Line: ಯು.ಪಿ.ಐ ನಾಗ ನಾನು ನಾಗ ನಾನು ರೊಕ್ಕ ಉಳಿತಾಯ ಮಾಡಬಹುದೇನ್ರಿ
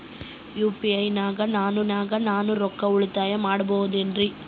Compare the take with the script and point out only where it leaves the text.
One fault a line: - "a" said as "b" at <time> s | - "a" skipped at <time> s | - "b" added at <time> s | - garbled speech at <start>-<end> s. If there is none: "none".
none